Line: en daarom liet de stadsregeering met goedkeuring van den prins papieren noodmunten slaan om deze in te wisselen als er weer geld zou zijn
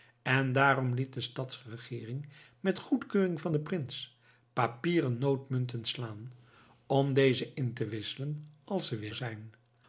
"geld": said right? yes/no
no